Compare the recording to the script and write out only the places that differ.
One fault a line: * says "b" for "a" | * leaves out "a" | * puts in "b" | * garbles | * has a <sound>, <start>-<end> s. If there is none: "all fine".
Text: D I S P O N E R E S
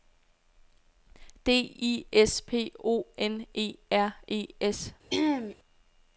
* has a throat clearing, 5.1-5.6 s